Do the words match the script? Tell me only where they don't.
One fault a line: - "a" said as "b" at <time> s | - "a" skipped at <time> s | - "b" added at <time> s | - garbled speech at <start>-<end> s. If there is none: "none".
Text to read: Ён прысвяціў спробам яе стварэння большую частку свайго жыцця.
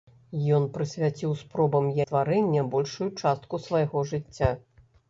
- "яе" skipped at 1.9 s